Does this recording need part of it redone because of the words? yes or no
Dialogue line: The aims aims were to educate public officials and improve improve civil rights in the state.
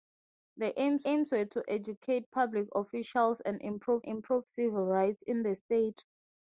no